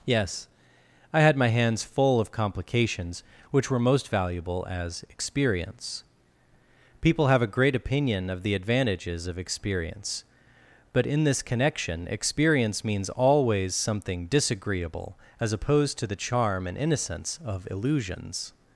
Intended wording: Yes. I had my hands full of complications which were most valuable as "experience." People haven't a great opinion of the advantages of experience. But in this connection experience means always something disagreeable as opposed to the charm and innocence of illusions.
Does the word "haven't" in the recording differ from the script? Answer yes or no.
yes